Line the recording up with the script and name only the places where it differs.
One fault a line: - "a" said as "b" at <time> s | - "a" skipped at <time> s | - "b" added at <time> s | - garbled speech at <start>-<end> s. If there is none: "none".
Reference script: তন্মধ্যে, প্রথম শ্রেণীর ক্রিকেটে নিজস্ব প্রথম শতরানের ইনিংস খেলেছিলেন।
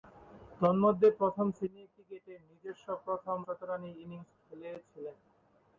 none